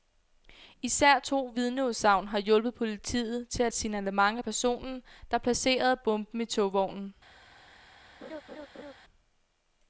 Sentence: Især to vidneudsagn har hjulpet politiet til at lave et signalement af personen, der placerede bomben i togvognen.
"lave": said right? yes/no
no